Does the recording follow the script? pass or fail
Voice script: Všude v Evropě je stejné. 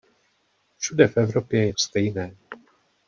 pass